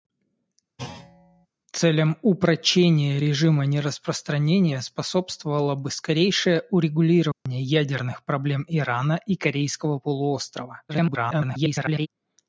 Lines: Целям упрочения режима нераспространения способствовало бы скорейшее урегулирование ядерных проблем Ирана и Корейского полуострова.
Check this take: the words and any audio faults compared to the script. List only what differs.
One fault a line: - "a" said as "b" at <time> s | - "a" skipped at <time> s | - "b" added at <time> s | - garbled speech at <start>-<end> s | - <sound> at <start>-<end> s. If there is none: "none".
- thud at 0.8-1.5 s
- dropout at 7.3-7.5 s
- garbled speech at 10.9-12.1 s